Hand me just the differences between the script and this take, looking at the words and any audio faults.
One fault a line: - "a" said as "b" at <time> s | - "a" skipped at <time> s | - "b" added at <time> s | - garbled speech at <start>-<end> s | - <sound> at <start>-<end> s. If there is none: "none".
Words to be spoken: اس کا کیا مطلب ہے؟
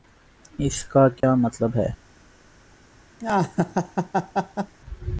- dropout at 1.2-1.2 s
- laugh at 3.2-4.7 s